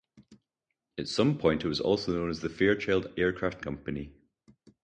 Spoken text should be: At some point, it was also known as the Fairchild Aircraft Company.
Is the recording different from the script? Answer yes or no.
no